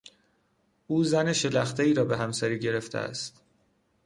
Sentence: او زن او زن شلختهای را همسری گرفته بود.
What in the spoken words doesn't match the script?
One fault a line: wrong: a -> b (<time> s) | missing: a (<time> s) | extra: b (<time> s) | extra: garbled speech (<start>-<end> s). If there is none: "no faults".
missing: او زن (1.3 s)
extra: به (2.0 s)
wrong: بود -> است (3.0 s)